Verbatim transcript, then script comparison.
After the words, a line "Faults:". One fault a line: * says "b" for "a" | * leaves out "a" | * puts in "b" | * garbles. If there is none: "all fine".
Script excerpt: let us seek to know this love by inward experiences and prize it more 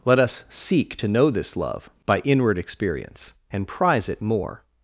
let us seek to know this love by inward experience and prize it more
Faults:
* says "experience" for "experiences"